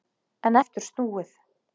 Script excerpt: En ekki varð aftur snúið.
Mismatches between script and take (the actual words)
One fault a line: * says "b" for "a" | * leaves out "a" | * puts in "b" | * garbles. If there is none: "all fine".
* leaves out "ekki varð"